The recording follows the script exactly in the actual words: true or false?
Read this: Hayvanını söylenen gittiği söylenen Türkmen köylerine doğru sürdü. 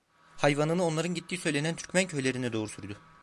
false